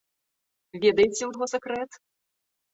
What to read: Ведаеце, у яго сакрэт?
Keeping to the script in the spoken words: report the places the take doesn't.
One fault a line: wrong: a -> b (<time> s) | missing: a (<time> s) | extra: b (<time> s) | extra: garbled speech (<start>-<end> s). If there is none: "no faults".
no faults